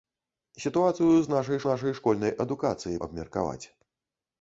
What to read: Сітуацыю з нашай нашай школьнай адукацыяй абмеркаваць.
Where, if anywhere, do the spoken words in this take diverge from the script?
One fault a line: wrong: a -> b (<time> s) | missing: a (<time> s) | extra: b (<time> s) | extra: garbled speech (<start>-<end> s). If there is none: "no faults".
no faults